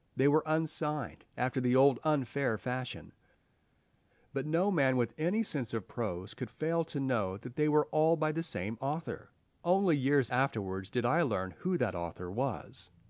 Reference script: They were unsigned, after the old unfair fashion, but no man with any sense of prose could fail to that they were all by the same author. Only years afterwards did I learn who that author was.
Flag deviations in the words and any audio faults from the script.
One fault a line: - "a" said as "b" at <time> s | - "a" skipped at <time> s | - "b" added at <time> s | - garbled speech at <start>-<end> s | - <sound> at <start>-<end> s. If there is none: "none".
- "know" added at 7.0 s